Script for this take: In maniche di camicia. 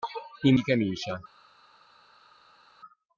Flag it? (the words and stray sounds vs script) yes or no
yes